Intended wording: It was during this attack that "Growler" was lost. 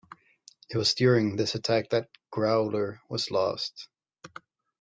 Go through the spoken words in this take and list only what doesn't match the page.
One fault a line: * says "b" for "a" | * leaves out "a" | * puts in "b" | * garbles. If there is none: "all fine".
all fine